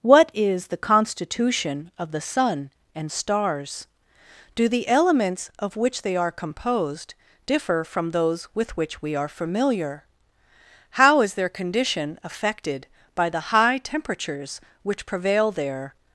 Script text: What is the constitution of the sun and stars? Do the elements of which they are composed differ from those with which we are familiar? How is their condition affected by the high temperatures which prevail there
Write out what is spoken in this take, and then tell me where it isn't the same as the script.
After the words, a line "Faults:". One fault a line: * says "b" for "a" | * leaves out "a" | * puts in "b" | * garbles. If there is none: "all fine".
What is the constitution of the sun and stars? Do the elements of which they are composed differ from those with which we are familiar? How is their condition affected by the high temperatures which prevail there
Faults:
all fine